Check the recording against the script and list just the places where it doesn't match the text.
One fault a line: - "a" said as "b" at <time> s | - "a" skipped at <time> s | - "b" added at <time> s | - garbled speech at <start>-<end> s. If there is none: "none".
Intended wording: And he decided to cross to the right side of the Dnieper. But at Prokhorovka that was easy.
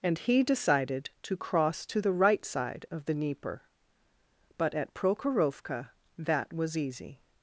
none